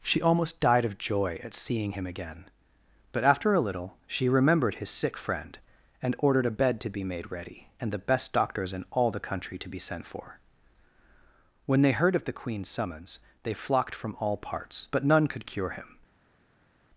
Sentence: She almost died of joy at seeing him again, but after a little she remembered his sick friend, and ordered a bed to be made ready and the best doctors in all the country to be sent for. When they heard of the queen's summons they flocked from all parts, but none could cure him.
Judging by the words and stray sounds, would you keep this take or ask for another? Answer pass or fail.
pass